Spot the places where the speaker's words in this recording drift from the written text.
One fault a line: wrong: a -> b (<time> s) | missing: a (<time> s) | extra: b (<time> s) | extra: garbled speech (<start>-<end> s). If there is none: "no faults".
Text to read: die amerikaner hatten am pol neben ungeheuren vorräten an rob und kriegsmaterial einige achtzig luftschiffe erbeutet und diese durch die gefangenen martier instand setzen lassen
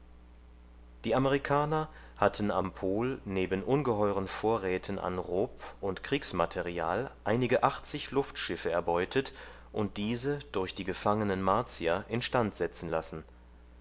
no faults